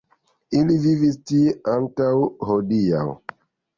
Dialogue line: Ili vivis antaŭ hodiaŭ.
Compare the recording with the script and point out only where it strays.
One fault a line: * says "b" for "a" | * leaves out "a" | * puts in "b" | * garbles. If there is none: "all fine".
* puts in "tie"